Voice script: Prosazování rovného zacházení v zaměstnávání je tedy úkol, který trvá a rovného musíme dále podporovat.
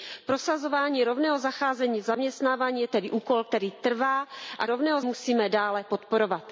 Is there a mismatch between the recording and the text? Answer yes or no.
no